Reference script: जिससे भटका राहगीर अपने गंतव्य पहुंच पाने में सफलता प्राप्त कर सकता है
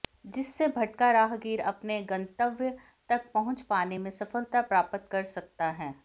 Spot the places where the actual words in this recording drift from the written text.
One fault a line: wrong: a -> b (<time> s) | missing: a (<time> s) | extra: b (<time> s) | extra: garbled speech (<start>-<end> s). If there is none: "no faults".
extra: तक (3.1 s)